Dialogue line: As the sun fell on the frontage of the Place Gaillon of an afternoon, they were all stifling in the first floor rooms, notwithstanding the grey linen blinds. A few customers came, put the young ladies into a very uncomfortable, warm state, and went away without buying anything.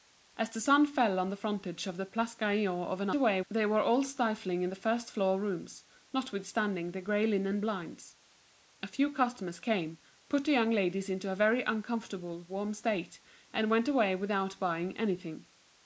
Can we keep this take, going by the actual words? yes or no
no